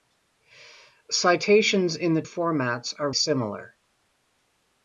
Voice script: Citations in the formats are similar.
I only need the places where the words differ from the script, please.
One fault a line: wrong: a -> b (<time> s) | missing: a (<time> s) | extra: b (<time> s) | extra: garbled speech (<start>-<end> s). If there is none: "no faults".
no faults